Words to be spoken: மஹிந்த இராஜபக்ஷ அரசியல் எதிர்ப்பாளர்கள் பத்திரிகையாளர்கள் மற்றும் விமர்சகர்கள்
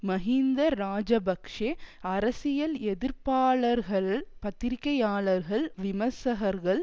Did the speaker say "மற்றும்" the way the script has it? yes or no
no